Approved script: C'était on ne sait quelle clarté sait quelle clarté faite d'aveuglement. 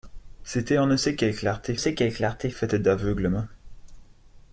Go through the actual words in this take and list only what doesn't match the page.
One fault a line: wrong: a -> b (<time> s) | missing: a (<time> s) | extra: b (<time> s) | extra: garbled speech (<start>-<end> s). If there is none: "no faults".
no faults